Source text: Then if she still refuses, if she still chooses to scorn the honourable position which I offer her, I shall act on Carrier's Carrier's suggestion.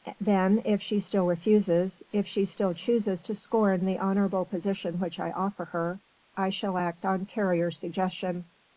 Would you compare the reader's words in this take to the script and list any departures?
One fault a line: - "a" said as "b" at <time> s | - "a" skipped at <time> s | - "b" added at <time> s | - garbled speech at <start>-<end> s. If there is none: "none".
- "Carrier's" skipped at 7.8 s